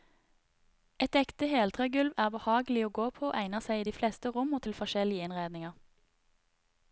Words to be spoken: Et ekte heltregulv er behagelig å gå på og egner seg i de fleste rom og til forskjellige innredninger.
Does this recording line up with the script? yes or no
yes